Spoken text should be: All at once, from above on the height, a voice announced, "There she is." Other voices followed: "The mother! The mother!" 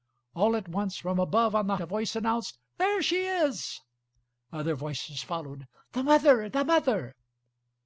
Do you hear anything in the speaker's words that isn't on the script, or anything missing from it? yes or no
yes